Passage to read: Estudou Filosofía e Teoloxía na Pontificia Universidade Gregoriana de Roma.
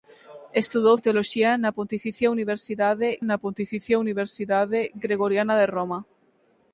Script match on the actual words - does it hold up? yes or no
no